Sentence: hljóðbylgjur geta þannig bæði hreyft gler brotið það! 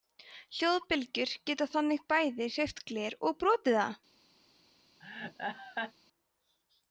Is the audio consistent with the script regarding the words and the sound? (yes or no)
no